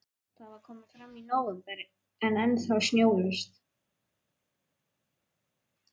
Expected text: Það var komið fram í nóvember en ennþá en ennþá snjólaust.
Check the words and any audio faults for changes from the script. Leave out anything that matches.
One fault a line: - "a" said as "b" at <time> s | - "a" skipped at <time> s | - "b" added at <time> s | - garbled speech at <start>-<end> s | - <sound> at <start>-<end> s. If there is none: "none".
- "en ennþá" skipped at 2.8 s